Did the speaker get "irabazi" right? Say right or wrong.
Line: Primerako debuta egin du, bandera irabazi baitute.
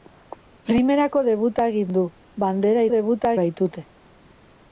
wrong